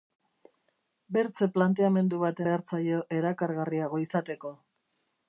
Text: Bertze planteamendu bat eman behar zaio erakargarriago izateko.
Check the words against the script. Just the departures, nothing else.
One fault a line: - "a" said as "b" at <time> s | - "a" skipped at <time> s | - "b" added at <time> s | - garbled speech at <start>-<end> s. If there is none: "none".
- "eman" skipped at 2.4 s